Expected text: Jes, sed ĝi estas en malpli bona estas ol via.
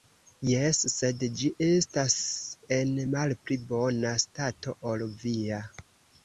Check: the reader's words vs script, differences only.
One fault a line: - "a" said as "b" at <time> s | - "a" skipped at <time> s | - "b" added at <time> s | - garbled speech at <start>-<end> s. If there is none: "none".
- "estas" said as "stato" at 4.3 s